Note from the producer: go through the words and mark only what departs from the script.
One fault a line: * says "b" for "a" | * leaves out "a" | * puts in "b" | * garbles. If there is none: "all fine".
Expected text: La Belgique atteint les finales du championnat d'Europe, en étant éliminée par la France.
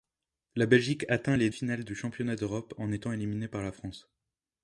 all fine